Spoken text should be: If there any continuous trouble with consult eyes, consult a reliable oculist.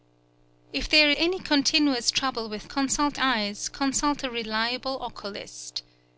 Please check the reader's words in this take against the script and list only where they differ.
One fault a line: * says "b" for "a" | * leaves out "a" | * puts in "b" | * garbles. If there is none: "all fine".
all fine